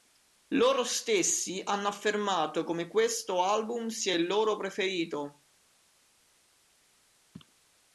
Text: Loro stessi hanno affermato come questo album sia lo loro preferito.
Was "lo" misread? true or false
true